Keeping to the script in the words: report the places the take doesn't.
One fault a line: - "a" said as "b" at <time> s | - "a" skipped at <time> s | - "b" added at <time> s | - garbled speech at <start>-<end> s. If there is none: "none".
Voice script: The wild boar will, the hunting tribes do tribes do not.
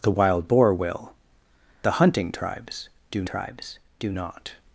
none